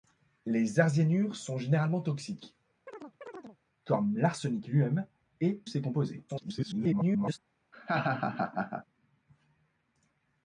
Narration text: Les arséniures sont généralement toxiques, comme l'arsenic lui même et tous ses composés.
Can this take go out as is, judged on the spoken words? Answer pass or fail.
fail